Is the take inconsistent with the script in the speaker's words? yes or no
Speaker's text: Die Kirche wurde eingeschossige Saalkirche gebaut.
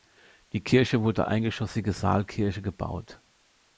no